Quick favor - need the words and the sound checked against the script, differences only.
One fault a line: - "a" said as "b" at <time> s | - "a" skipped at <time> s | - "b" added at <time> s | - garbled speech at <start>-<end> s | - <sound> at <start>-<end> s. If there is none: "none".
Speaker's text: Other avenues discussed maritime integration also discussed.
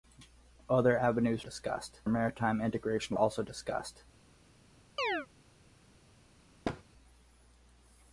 - chirp at 5.0-5.3 s
- thud at 6.6-6.8 s